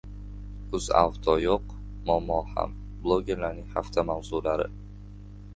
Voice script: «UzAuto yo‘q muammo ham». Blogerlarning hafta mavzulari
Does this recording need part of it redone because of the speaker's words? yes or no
no